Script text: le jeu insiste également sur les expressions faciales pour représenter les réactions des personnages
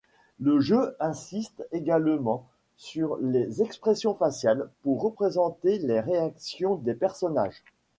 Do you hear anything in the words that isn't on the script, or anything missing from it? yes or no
no